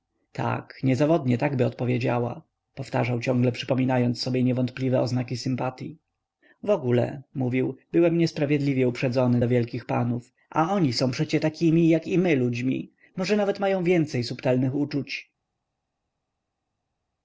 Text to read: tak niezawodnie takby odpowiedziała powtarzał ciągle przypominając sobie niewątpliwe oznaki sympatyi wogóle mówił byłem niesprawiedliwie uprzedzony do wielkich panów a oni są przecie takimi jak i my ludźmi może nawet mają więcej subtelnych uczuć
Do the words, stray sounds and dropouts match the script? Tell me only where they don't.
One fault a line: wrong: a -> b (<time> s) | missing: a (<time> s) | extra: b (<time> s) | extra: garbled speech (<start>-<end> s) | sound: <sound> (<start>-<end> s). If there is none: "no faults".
no faults